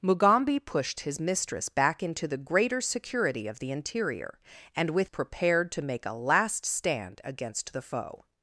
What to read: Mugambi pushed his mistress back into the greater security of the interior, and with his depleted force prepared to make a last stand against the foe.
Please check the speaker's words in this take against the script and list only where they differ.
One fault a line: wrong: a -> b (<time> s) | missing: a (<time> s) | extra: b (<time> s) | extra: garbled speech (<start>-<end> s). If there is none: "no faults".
missing: his depleted force (5.1 s)